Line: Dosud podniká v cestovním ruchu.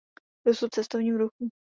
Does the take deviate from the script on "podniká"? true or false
true